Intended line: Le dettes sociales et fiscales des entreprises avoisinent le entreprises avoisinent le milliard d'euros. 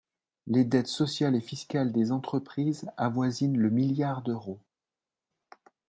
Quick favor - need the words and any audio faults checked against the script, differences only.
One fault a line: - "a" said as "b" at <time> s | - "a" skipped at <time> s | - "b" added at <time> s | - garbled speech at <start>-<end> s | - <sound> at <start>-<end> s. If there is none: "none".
- "Le" said as "Les" at 0.5 s
- "entreprises avoisinent le" skipped at 3.7 s